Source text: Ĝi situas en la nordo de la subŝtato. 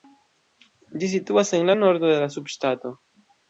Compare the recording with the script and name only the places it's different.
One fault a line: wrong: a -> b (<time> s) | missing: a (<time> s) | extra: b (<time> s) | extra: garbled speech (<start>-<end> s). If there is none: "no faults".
no faults